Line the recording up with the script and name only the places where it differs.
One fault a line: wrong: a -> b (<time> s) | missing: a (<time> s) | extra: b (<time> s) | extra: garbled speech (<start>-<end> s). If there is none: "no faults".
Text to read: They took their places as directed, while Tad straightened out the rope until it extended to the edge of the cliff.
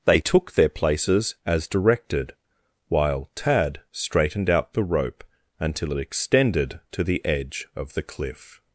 no faults